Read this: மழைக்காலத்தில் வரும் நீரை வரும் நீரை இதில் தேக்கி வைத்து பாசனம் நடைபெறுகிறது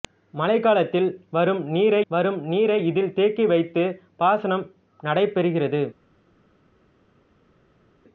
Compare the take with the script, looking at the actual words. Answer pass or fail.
pass